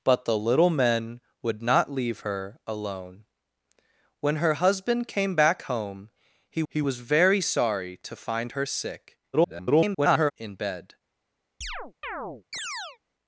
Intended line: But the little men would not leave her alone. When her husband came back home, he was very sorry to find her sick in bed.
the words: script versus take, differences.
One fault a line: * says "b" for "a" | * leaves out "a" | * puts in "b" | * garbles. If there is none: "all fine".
* puts in "he"
* garbles